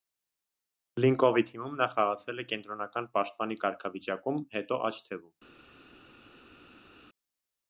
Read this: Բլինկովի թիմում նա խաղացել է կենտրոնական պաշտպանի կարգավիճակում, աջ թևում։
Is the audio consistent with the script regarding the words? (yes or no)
no